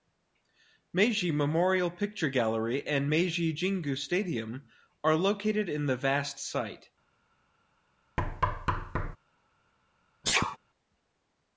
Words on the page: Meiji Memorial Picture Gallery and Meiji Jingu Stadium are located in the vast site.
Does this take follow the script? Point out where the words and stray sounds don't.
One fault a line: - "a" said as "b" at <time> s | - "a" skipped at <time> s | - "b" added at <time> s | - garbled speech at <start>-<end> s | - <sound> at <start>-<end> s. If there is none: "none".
- thud at 8.2-9.2 s
- sneeze at 10.2-10.6 s